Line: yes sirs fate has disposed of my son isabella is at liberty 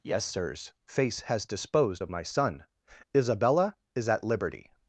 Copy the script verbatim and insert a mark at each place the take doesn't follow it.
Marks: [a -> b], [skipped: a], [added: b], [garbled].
yes sirs [fate -> face] has disposed of my son isabella is at liberty